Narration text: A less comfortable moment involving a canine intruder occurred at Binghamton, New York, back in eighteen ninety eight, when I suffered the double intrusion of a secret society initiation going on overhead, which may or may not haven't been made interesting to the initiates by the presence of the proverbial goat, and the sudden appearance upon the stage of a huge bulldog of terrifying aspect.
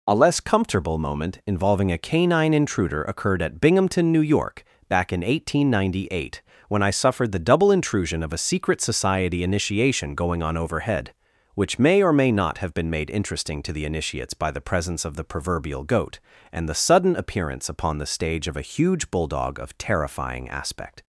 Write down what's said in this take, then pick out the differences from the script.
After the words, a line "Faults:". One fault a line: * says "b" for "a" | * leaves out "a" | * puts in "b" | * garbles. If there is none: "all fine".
A less comfortable moment involving a canine intruder occurred at Binghamton, New York, back in eighteen ninety eight, when I suffered the double intrusion of a secret society initiation going on overhead, which may or may not have been made interesting to the initiates by the presence of the proverbial goat, and the sudden appearance upon the stage of a huge bulldog of terrifying aspect.
Faults:
* says "have" for "haven't"